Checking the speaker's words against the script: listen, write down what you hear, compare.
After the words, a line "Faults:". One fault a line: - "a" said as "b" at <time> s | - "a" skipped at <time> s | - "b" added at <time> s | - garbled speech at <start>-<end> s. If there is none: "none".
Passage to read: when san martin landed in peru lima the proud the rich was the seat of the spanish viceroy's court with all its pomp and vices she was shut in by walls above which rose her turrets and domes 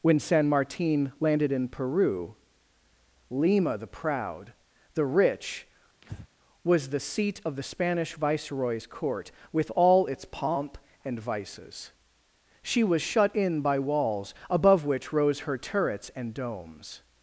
when san martin landed in peru lima the proud the rich was the seat of the spanish viceroy's court with all its pomp and vices she was shut in by walls above which rose her turrets and domes
Faults:
none